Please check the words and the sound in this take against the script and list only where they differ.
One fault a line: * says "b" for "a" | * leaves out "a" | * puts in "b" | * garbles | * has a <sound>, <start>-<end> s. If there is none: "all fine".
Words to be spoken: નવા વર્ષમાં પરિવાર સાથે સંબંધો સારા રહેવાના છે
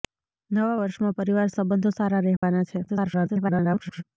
* leaves out "સાથે"
* has a dropout, 2.4-2.4 s
* garbles